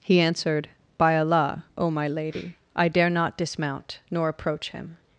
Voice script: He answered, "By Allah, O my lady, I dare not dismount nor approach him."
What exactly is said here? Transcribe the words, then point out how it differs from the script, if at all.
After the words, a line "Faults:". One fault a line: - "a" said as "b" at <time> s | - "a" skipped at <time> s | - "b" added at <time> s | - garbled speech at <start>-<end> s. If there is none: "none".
He answered, "By Allah, O my lady, I dare not dismount nor approach him."
Faults:
none